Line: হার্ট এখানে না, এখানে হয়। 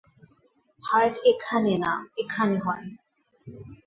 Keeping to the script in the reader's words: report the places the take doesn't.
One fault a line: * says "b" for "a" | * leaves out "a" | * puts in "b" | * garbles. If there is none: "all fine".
all fine